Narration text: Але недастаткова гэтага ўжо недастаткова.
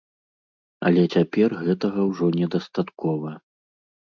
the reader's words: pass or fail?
fail